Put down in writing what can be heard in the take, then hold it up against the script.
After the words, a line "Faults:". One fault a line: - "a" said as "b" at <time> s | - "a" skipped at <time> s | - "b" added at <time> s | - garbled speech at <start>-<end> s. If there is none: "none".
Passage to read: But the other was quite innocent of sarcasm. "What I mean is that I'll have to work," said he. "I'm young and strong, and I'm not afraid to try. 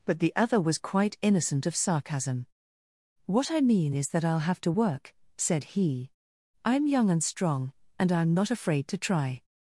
But the other was quite innocent of sarcasm. "What I mean is that I'll have to work," said he. "I'm young and strong, and I'm not afraid to try.
Faults:
none